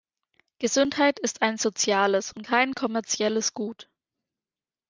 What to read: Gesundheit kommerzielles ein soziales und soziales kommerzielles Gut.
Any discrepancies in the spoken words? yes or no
yes